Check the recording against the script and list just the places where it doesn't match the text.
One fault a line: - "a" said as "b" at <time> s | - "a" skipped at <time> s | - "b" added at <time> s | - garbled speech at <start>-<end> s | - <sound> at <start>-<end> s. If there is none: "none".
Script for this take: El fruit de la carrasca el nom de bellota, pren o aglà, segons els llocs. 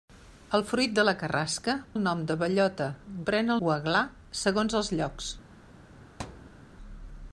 - thud at 6.2-6.6 s